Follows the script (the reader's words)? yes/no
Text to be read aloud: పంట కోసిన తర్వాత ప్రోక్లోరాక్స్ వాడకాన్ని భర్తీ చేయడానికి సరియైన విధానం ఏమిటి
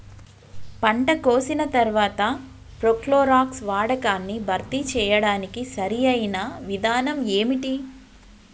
yes